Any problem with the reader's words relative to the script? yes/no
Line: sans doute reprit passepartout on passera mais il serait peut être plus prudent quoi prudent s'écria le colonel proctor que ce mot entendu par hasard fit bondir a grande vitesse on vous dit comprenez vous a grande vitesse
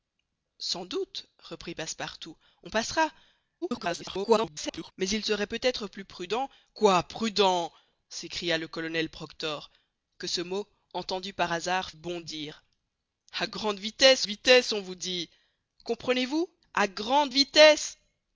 yes